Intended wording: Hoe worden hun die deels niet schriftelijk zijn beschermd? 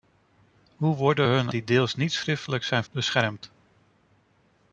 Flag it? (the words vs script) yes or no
no